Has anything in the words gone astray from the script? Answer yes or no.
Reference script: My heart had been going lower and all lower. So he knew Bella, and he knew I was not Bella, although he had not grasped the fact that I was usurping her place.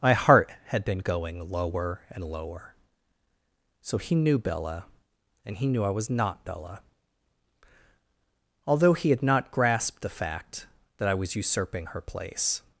yes